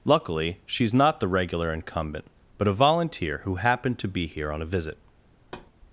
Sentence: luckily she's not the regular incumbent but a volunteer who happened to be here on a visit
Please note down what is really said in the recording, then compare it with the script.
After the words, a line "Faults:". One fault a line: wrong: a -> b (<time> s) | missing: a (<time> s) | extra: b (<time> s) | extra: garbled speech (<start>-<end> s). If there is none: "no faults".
luckily she's not the regular incumbent but a volunteer who happened to be here on a visit
Faults:
no faults